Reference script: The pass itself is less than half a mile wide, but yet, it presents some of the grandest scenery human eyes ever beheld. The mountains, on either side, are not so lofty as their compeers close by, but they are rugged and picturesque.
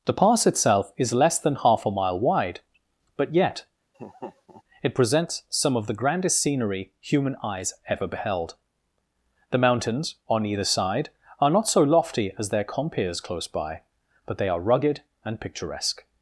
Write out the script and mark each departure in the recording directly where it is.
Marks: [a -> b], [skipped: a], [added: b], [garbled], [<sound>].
The pass itself is less than half a mile wide, but yet, [laugh] it presents some of the grandest scenery human eyes ever beheld. The mountains, on either side, are not so lofty as their compeers close by, but they are rugged and picturesque.